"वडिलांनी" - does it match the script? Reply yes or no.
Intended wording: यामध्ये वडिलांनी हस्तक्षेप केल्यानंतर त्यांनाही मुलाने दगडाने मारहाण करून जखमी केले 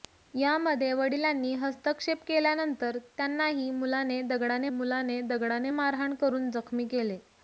yes